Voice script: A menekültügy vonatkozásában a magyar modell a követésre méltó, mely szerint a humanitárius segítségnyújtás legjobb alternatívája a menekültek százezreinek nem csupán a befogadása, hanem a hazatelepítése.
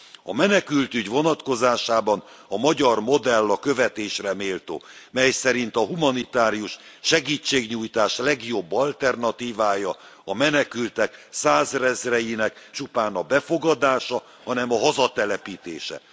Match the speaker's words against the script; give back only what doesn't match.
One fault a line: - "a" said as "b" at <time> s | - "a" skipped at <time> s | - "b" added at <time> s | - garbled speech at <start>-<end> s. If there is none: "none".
- "nem" skipped at 12.7 s